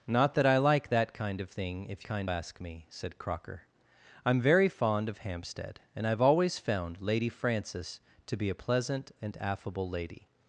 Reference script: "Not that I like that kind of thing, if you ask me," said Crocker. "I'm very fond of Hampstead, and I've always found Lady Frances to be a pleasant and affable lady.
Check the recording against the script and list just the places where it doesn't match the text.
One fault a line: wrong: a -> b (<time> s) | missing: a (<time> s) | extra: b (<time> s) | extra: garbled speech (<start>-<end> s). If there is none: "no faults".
wrong: you -> kind (2.0 s)